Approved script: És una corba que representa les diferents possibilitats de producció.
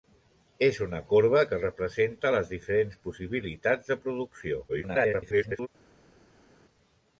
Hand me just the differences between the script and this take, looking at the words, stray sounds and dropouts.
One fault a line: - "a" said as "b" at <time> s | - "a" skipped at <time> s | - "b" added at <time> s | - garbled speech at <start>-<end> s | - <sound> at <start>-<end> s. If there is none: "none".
- garbled speech at 4.7-5.7 s